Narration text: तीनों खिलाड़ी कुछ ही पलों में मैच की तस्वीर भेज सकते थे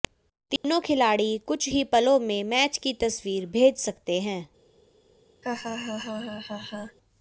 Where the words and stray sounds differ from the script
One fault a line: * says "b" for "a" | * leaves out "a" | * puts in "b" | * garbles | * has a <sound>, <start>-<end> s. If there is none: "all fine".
* has a dropout, 0.6-0.6 s
* says "हैं" for "थे"
* has a laugh, 5.4-7.0 s